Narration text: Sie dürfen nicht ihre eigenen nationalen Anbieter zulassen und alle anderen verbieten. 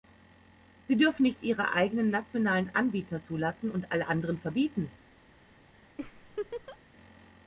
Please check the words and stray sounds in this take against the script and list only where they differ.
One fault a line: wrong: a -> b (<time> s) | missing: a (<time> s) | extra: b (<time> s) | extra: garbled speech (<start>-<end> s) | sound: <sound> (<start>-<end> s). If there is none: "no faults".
sound: laugh (6.0-6.8 s)